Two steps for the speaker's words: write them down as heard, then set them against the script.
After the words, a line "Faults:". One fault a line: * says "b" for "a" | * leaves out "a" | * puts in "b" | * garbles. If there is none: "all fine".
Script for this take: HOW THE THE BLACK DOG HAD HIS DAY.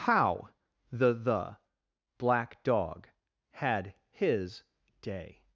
HOW THE THE BLACK DOG HAD HIS DAY.
Faults:
all fine